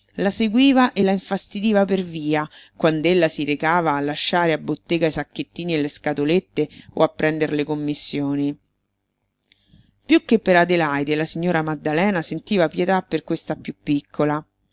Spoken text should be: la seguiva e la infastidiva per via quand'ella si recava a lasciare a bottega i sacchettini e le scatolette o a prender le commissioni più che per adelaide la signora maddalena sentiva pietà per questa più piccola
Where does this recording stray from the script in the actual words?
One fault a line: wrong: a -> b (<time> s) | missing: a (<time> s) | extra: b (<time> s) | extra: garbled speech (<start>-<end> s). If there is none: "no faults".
no faults